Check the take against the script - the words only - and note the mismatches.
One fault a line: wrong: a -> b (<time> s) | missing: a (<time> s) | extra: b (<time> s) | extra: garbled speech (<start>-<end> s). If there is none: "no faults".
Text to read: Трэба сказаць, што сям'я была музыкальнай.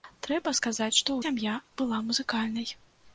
no faults